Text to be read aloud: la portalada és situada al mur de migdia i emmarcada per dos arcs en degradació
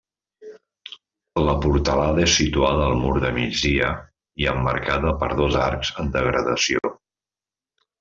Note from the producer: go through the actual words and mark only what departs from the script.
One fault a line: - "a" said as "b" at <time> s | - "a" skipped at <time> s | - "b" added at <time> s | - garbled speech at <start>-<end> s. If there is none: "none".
none